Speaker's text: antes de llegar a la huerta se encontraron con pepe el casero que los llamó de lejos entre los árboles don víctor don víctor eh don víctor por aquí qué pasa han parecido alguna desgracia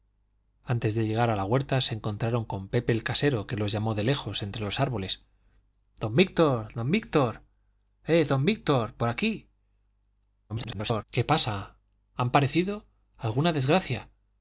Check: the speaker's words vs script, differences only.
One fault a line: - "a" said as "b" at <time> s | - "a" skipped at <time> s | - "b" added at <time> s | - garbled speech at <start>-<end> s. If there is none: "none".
- garbled speech at 10.5-11.0 s